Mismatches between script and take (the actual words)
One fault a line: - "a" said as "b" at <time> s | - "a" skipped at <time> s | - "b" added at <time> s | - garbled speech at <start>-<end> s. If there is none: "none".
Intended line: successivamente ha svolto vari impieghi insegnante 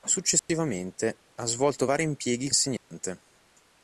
none